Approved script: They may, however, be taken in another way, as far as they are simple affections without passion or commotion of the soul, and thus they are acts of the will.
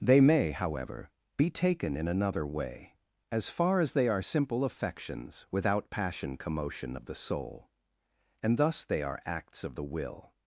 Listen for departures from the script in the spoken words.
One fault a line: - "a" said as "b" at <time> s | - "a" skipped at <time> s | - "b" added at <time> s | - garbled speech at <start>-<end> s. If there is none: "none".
- "or" skipped at 6.4 s